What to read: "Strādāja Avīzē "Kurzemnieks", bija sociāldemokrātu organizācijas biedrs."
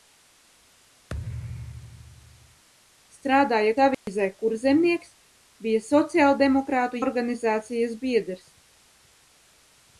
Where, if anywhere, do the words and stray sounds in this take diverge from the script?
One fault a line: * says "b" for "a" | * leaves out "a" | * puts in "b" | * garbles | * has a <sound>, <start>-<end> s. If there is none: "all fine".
* has a thud, 1.1-2.6 s
* has a dropout, 3.9-4.1 s